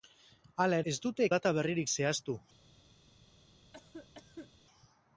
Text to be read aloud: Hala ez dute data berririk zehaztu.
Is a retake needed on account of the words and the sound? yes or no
yes